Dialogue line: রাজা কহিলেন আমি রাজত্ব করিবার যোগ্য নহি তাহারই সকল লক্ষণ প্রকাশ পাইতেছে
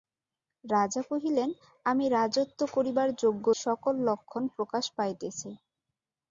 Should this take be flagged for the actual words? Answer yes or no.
yes